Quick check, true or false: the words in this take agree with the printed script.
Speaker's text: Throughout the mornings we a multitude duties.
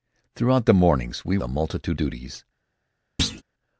true